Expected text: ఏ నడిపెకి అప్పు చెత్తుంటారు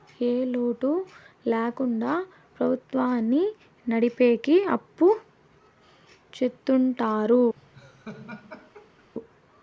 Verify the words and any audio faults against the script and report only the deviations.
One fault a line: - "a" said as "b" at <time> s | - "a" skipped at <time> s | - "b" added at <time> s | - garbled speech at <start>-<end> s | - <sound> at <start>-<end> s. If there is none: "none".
- "లోటు ల్యాకుండా ప్రభుత్వాన్ని" added at 0.5 s
- laugh at 7.6-9.1 s